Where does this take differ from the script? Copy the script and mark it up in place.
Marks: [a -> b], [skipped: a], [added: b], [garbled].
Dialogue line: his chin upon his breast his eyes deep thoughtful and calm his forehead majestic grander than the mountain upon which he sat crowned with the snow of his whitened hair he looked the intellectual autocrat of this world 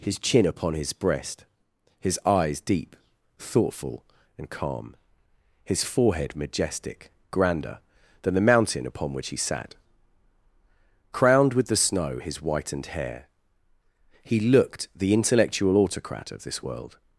his chin upon his breast his eyes deep thoughtful and calm his forehead majestic grander than the mountain upon which he sat crowned with the snow [skipped: of] his whitened hair he looked the intellectual autocrat of this world